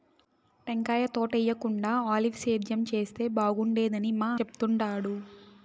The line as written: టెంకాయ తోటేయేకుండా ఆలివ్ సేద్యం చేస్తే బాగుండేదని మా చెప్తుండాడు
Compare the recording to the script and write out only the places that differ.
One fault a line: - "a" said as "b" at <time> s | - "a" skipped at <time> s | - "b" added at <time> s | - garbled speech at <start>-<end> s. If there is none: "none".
none